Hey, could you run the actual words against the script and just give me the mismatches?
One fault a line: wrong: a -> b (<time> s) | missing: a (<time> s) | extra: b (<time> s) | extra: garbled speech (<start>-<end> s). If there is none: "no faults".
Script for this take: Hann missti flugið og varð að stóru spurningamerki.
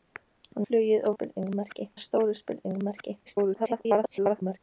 missing: missti (0.6 s)
wrong: varð -> spurningamerki (1.1 s)
extra: garbled speech (3.3-4.6 s)